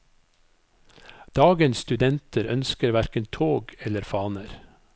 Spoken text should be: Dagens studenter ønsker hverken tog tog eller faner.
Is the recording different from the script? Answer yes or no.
yes